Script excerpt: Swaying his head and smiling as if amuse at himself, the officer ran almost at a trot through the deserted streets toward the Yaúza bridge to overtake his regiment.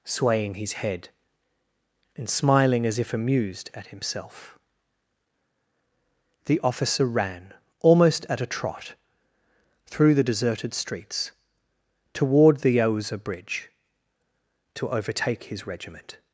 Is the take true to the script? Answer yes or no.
no